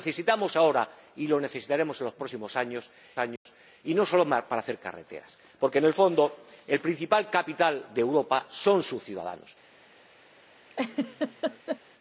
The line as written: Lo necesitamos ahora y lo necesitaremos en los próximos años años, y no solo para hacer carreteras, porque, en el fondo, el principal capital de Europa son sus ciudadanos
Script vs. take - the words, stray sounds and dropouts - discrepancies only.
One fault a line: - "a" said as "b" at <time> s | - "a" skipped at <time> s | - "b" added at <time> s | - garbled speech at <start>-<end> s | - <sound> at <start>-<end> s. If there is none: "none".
- dropout at 3.4-3.5 s
- laugh at 10.7-11.8 s